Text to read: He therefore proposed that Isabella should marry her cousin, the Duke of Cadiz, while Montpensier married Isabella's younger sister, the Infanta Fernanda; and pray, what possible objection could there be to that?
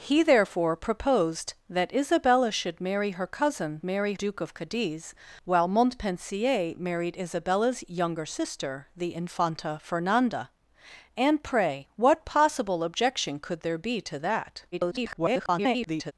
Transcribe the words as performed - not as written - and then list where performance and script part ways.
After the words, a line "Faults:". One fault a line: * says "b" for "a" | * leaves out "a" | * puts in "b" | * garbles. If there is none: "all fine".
He therefore proposed that Isabella should marry her cousin, marry Duke of Cadiz, while Montpensier married Isabella's younger sister, the Infanta Fernanda; and pray, what possible objection could there be to that? [garbled]
Faults:
* says "marry" for "the"
* garbles